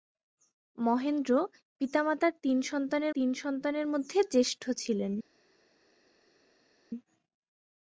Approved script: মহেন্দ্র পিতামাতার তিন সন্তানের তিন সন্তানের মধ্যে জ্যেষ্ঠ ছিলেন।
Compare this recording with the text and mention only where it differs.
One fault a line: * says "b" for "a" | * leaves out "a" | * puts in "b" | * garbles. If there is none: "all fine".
all fine